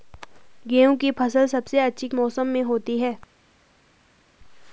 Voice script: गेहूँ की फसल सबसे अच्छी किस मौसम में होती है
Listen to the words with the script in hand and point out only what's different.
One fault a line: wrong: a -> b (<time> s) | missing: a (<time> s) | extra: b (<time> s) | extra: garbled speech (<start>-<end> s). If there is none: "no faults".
missing: किस (2.1 s)